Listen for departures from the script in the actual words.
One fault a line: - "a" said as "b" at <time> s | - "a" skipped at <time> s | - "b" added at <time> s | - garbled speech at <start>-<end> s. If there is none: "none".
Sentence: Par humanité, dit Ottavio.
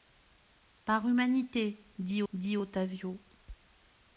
- "dit" added at 2.3 s